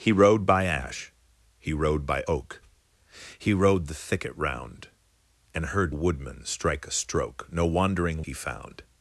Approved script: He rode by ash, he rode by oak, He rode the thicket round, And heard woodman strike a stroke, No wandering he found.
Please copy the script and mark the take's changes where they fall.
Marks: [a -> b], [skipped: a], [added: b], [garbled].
He rode by ash, he rode by oak, He rode the thicket round, And heard woodman strike a stroke, No wandering he found.